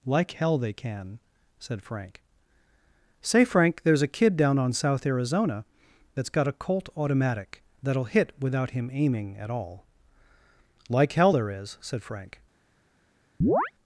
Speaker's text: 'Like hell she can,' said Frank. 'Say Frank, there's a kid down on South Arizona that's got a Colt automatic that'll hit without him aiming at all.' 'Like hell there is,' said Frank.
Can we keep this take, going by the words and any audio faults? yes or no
no